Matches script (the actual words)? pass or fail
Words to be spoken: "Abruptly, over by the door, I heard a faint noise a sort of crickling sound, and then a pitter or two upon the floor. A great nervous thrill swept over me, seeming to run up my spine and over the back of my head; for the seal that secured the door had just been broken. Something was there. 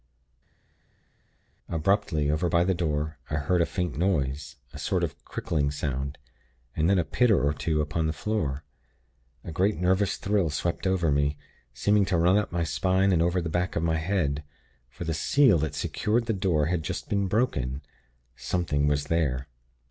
pass